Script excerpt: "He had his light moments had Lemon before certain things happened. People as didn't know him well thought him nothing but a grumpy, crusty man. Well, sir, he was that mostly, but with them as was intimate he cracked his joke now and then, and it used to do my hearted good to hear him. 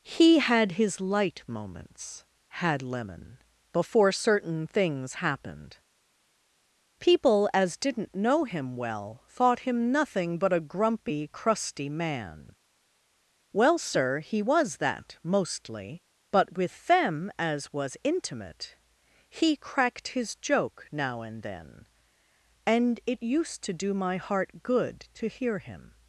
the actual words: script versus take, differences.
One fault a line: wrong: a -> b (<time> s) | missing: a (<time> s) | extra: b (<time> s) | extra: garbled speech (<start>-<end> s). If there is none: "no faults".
wrong: hearted -> heart (24.2 s)